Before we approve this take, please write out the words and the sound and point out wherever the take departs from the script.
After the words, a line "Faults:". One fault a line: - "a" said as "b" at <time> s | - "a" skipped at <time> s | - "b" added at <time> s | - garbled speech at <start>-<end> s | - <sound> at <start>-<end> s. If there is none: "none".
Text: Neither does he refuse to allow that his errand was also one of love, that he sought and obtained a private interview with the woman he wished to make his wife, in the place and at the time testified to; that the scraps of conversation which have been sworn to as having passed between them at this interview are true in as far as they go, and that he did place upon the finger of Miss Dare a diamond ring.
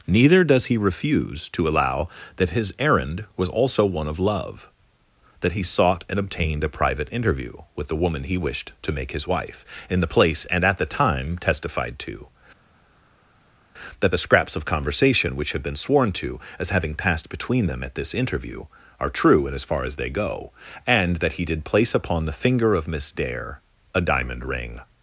Neither does he refuse to allow that his errand was also one of love, that he sought and obtained a private interview with the woman he wished to make his wife, in the place and at the time testified to; that the scraps of conversation which have been sworn to as having passed between them at this interview are true in as far as they go, and that he did place upon the finger of Miss Dare a diamond ring.
Faults:
none